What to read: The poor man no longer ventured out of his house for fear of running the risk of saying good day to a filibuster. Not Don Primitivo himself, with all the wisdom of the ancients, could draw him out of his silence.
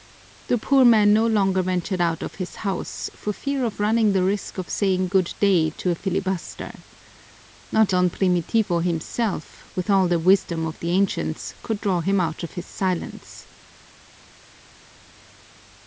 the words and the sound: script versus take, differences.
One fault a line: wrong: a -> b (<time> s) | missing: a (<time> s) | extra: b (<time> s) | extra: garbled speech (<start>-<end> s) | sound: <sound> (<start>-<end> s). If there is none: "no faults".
no faults